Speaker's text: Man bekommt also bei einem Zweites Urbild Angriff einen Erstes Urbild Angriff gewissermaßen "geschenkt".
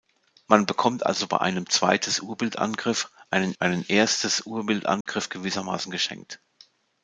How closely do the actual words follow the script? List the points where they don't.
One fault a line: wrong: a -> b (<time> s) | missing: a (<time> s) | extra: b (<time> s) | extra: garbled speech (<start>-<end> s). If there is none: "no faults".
extra: einen (3.6 s)